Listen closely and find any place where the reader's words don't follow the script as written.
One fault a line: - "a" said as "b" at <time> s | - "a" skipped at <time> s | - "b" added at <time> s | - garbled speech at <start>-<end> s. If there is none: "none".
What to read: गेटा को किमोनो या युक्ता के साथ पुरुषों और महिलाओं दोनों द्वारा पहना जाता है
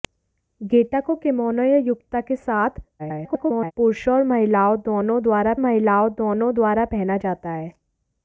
- garbled speech at 3.0-3.7 s
- "महिलाओं दोनों द्वारा" added at 5.6 s